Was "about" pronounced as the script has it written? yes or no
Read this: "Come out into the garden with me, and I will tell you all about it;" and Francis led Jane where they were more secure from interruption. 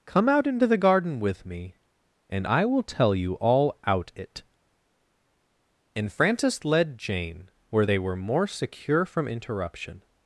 no